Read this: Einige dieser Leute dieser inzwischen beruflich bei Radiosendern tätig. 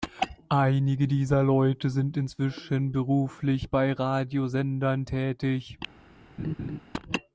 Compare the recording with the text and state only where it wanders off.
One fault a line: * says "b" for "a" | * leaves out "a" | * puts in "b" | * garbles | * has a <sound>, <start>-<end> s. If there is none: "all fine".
* says "sind" for "dieser"
* has a laugh, 6.4-6.8 s